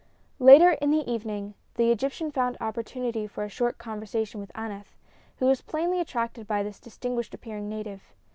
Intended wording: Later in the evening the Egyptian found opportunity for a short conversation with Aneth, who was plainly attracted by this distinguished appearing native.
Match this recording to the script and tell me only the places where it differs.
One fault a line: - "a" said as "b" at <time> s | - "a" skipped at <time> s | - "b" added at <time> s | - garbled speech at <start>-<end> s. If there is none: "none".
none